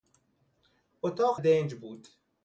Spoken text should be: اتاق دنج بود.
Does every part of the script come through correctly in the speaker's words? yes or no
yes